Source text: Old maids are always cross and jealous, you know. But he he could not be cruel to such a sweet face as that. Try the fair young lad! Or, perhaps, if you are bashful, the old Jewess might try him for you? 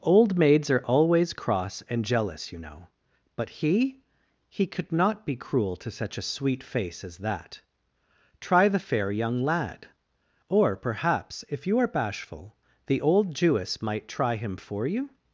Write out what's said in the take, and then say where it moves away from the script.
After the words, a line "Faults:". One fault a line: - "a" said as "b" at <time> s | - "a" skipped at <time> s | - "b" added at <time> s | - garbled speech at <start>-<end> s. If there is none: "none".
Old maids are always cross and jealous, you know. But he he could not be cruel to such a sweet face as that. Try the fair young lad! Or, perhaps, if you are bashful, the old Jewess might try him for you?
Faults:
none